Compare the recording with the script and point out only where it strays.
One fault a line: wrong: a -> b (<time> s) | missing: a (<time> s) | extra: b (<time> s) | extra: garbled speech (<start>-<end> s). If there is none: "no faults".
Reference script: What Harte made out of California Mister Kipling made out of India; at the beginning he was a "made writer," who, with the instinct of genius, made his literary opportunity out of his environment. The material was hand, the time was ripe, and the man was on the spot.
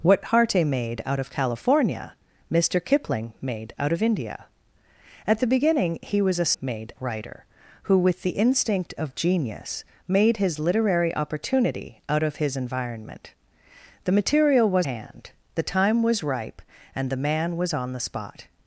no faults